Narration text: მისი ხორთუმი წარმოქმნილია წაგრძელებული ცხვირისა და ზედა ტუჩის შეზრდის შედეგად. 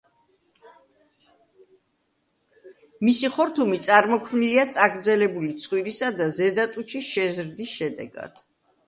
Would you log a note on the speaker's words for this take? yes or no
no